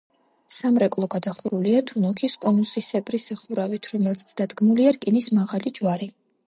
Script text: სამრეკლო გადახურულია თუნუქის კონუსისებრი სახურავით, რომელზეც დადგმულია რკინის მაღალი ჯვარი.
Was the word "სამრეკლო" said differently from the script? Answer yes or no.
no